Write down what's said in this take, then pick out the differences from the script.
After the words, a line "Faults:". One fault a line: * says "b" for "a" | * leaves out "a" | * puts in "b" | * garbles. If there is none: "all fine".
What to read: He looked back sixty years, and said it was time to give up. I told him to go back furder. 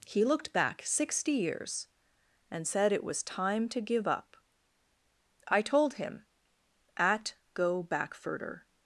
He looked back sixty years, and said it was time to give up. I told him at go back furder.
Faults:
* says "at" for "to"